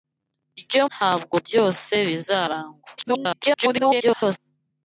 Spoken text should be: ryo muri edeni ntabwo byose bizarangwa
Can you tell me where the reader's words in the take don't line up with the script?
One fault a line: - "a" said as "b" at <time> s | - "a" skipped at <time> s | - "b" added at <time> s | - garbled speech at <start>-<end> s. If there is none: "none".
- "muri edeni" skipped at 0.8 s
- garbled speech at 3.0-4.4 s